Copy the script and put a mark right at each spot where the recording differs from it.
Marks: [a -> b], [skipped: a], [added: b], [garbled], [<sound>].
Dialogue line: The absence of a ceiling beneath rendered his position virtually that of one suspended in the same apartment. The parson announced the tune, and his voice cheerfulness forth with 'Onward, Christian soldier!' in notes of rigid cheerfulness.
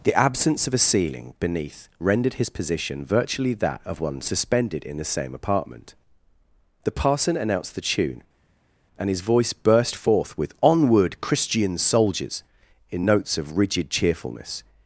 The absence of a ceiling beneath rendered his position virtually that of one suspended in the same apartment. The parson announced the tune, and his voice [cheerfulness -> burst] forth with 'Onward, Christian [soldier!' -> soldiers] in notes of rigid cheerfulness.